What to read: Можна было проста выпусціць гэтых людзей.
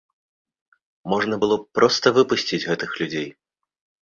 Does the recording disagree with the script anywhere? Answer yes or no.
yes